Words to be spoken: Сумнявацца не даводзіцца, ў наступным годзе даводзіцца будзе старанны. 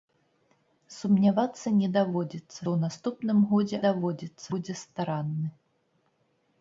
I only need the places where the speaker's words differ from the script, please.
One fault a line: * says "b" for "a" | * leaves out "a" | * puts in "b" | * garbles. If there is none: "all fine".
all fine